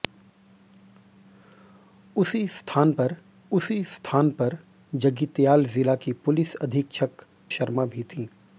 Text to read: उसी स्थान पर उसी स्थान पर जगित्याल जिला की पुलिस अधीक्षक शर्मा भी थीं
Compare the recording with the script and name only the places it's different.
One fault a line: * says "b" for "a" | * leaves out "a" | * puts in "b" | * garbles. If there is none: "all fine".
all fine